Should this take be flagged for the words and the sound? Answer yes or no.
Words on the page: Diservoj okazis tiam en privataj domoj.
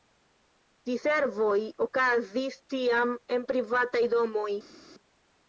no